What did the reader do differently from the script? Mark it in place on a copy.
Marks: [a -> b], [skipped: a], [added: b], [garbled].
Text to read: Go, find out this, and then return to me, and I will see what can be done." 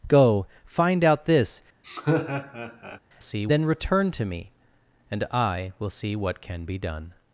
Go, find out this, [and -> see] then return to me, and I will see what can be done."